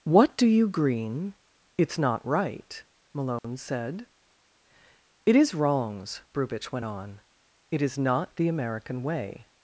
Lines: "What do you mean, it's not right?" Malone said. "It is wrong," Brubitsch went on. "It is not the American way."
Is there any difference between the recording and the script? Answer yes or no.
yes